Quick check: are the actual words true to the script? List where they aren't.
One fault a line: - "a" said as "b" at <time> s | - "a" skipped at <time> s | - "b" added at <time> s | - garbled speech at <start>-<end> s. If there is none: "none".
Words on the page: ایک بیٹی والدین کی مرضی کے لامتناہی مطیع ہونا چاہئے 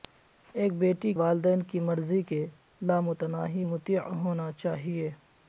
none